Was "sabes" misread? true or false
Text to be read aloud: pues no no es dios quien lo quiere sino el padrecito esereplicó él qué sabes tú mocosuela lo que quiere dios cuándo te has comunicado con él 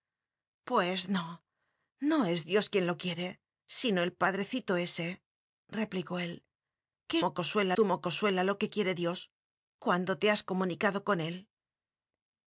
true